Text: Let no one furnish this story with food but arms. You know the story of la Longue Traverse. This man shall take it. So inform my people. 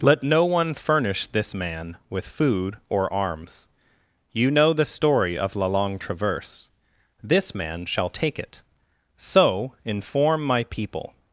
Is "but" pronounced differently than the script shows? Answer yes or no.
yes